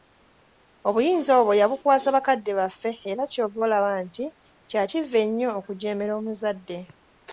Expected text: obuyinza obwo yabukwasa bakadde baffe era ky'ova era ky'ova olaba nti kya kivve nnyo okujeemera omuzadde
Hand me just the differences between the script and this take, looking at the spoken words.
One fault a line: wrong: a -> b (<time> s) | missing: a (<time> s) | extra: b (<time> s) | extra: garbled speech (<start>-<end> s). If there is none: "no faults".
missing: era ky'ova (3.6 s)